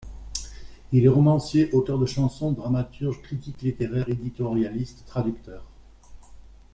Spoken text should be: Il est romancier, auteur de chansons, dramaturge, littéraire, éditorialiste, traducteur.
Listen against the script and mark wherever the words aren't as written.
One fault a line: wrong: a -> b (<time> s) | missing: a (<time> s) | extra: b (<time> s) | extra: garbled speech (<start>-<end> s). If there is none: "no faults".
extra: critique (3.2 s)